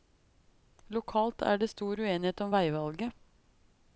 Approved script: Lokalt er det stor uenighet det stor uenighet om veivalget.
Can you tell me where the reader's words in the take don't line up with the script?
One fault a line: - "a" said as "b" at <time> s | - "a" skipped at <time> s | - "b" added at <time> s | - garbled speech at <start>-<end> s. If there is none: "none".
- "det stor uenighet" skipped at 2.4 s